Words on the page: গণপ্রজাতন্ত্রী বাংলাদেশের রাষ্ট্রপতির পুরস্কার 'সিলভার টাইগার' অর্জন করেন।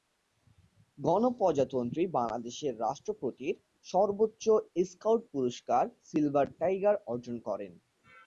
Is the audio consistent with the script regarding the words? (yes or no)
no